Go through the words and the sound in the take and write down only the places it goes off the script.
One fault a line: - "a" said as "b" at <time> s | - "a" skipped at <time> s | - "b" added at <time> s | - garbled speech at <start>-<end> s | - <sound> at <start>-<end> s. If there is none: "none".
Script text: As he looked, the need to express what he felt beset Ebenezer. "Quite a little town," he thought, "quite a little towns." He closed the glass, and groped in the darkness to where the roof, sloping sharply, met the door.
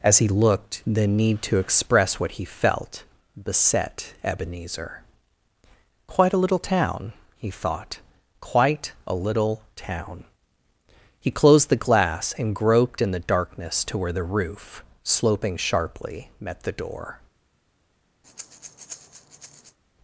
- "towns" said as "town" at 9.8 s
- breath at 18.2-19.8 s